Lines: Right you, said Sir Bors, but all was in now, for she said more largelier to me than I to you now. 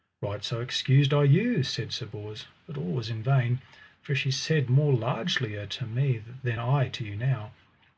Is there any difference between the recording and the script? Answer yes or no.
yes